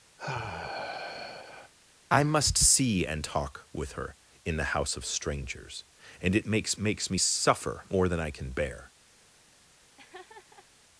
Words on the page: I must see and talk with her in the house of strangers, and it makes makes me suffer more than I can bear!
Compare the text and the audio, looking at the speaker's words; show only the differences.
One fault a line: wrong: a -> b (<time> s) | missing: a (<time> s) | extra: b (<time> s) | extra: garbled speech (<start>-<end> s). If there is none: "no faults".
no faults